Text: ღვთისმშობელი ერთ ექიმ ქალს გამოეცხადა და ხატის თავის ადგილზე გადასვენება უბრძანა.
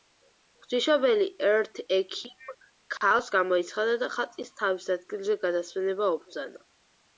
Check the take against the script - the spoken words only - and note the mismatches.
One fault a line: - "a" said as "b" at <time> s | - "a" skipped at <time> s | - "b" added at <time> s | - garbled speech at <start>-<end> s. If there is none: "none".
none